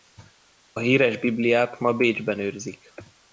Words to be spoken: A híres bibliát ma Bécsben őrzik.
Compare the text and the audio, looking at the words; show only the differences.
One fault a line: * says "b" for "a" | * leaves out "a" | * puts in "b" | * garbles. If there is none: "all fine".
all fine